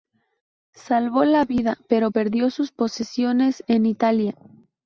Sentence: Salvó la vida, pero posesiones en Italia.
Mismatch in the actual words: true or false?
true